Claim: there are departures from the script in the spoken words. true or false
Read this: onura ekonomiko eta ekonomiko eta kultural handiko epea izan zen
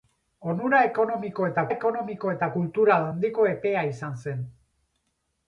false